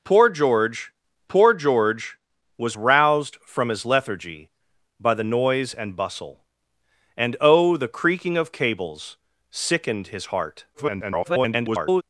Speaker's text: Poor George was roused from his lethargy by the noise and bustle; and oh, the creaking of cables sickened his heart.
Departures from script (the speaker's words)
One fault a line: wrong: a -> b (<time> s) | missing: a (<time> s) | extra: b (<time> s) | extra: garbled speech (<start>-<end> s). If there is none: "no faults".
extra: poor George (1.3 s)
extra: garbled speech (10.7-12.0 s)